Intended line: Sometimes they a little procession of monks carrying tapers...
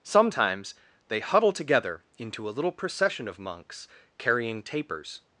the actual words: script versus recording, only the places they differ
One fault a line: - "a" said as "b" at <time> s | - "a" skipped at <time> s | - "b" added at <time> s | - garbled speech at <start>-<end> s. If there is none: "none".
- "huddle together into" added at 1.2 s